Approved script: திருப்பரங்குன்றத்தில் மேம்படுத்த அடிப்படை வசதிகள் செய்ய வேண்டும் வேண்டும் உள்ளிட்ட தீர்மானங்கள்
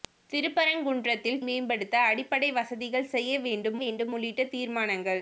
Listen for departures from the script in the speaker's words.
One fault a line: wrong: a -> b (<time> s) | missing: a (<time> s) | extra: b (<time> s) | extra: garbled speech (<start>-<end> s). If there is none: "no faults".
no faults